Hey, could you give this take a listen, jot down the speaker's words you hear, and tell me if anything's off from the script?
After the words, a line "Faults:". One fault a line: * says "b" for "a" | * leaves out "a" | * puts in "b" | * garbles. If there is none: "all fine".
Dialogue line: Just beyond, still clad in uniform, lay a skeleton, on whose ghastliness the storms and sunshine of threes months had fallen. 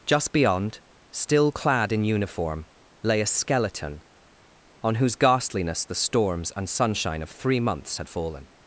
Just beyond, still clad in uniform, lay a skeleton, on whose ghastliness the storms and sunshine of three months had fallen.
Faults:
* says "three" for "threes"